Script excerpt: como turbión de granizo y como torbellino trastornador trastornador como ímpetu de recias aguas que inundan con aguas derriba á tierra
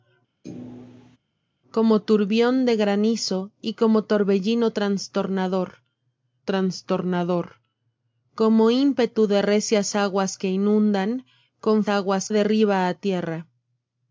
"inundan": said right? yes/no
yes